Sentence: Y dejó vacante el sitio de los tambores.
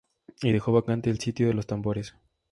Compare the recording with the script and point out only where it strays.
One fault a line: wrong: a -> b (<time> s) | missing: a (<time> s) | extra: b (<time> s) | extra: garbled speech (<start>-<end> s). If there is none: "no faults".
no faults